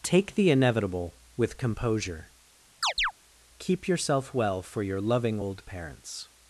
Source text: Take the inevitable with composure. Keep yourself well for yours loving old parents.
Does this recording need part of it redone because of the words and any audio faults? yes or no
yes